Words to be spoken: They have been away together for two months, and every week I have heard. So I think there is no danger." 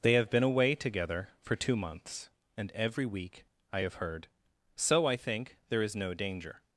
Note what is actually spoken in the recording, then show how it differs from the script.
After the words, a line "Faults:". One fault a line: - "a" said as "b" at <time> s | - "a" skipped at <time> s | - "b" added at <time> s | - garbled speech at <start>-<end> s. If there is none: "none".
They have been away together for two months, and every week I have heard. So I think there is no danger."
Faults:
none